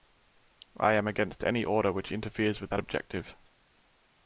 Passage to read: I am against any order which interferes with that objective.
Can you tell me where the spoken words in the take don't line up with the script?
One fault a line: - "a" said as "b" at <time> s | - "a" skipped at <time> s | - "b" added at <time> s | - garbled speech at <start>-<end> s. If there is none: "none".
none